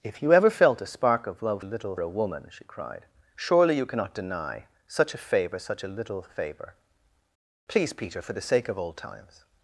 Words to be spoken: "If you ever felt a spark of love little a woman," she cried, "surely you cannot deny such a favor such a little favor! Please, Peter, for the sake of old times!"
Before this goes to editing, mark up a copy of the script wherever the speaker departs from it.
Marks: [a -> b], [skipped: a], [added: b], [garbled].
"If you ever felt a spark of love little a woman," she cried, "surely you cannot deny such a favor such a little favor! Please, Peter, for the sake of old times!"